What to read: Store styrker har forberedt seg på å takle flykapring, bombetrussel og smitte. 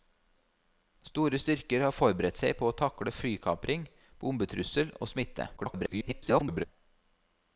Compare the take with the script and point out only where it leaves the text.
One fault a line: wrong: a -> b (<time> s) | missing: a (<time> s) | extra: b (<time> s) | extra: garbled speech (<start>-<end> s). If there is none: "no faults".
extra: garbled speech (5.6-6.6 s)